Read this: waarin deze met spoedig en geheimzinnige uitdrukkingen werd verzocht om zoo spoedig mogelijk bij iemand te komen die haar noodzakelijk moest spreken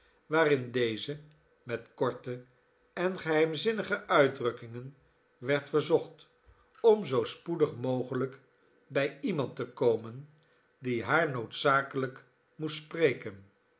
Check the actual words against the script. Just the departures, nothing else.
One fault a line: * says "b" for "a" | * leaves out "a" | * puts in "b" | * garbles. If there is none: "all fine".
* says "korte" for "spoedig"